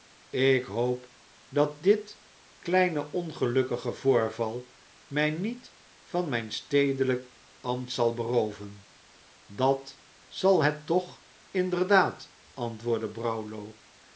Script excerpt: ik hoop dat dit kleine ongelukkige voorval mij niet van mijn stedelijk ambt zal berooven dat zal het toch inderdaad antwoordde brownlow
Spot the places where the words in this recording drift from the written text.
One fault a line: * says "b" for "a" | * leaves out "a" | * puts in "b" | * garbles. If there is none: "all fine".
all fine